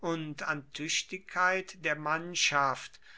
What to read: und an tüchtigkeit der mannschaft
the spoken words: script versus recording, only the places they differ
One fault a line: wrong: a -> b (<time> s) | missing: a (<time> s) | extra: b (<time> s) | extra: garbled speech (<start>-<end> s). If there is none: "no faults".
no faults